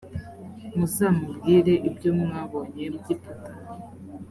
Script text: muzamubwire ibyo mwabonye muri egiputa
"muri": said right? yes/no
no